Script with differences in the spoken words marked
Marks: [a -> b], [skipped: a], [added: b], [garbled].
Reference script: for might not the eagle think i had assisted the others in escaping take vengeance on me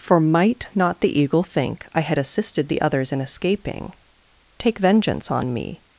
for might not the eagle think i had assisted the others in escaping take vengeance on me